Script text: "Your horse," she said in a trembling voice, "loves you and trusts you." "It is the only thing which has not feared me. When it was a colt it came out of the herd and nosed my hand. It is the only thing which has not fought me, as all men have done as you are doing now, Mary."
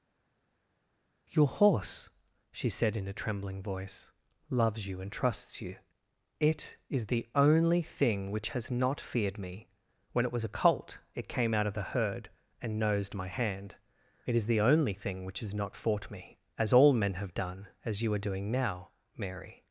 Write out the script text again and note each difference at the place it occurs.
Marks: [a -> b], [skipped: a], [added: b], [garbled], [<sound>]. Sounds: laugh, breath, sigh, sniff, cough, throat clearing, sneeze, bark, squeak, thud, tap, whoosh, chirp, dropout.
"Your horse," she said in a trembling voice, "loves you and trusts you." "It is the only thing which has not feared me. When it was a colt it came out of the herd and nosed my hand. It is the only thing which has not fought me, as all men have done as you are doing now, Mary."